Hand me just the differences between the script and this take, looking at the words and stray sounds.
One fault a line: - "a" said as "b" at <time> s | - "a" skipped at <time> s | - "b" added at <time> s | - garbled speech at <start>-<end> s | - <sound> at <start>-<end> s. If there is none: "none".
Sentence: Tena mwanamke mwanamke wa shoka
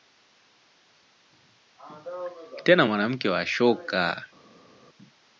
- "mwanamke" skipped at 3.3 s